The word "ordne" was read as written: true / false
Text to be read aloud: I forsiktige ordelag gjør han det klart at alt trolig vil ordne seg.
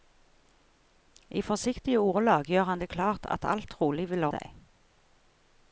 false